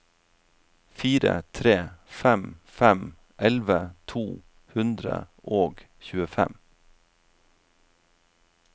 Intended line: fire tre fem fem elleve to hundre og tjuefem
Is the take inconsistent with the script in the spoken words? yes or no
no